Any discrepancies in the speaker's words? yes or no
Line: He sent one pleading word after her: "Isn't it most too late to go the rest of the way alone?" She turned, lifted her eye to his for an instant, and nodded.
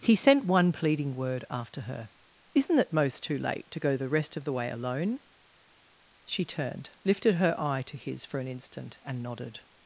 no